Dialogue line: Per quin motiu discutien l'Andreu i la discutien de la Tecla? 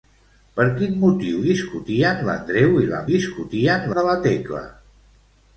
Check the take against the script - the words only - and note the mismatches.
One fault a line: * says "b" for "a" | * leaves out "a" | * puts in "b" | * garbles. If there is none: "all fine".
all fine